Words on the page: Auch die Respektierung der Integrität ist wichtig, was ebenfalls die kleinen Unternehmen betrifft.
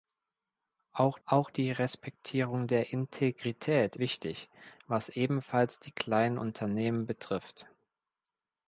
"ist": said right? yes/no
no